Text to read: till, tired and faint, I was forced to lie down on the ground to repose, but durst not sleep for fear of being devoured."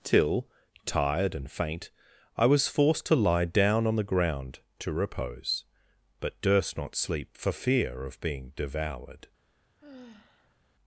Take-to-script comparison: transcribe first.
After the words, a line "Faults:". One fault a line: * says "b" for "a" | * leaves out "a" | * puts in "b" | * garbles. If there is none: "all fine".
till, tired and faint, I was forced to lie down on the ground to repose, but durst not sleep for fear of being devoured."
Faults:
all fine